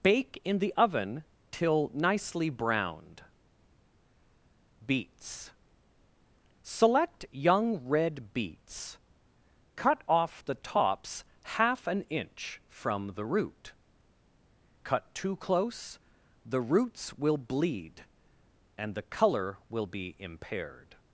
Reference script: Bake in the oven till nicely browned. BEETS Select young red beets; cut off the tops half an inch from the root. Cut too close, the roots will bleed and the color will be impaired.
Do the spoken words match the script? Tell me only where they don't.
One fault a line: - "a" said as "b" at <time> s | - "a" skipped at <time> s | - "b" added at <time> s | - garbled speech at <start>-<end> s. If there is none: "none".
none